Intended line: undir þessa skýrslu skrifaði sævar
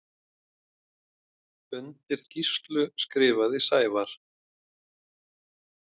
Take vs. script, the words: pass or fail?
fail